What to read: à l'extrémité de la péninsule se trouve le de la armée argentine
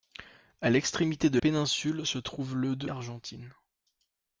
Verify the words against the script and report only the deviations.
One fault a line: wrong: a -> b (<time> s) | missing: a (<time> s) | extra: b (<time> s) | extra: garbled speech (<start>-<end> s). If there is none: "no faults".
missing: la (1.4 s)
missing: la armée (2.9 s)